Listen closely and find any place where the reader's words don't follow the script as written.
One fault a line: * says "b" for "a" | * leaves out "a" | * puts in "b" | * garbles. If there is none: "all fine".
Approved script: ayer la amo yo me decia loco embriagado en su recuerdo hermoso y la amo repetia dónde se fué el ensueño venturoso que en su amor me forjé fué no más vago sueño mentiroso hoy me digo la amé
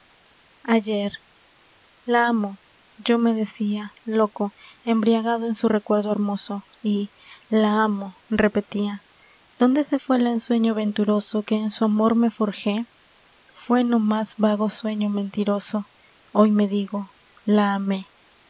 all fine